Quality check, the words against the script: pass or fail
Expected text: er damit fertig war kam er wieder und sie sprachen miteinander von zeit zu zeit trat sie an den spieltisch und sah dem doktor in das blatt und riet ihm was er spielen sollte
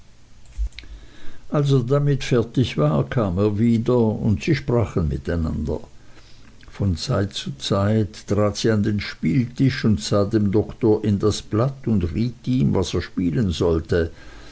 pass